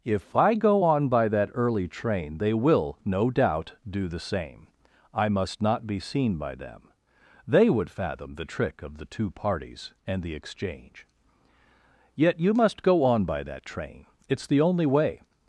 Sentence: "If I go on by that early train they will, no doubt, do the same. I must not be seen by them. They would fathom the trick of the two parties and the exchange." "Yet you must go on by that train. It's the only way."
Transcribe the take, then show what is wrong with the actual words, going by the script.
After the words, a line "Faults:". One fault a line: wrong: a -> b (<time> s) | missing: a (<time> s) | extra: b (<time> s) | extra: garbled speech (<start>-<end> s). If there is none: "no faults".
"If I go on by that early train they will, no doubt, do the same. I must not be seen by them. They would fathom the trick of the two parties and the exchange." "Yet you must go on by that train. It's the only way."
Faults:
no faults